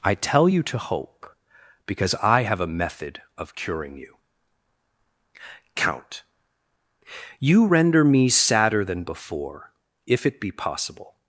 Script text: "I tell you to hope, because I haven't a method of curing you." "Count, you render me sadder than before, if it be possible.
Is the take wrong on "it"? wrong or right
right